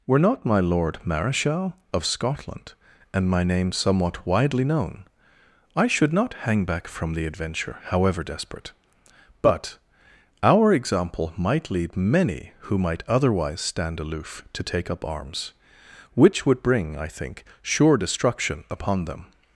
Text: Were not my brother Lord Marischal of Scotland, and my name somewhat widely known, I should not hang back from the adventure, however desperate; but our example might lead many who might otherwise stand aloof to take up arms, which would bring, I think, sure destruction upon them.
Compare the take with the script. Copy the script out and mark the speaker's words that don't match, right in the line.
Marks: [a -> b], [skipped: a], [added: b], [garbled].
Were not my [skipped: brother] Lord Marischal of Scotland, and my name somewhat widely known, I should not hang back from the adventure, however desperate; but our example might lead many who might otherwise stand aloof to take up arms, which would bring, I think, sure destruction upon them.